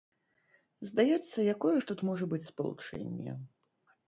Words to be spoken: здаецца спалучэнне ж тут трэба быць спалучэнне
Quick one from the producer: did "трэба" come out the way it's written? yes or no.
no